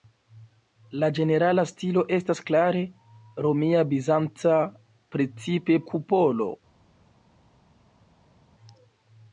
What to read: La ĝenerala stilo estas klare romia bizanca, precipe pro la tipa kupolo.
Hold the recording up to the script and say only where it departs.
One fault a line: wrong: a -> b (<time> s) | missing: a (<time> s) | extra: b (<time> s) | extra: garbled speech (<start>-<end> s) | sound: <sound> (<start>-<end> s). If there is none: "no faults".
missing: pro la tipa (5.8 s)